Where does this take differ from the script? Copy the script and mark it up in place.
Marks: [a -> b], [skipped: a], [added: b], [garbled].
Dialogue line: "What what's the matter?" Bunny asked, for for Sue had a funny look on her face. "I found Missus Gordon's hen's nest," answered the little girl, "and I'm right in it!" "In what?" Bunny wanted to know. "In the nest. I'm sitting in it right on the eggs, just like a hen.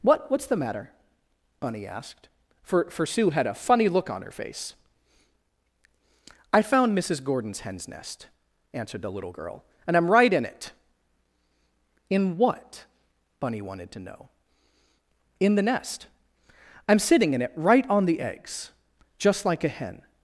"What what's the matter?" Bunny asked, for for Sue had a funny look on her face. "I found Missus Gordon's hen's nest," answered the little girl, "and I'm right in it!" "In what?" Bunny wanted to know. "In the nest. I'm sitting in it right on the eggs, just like a hen.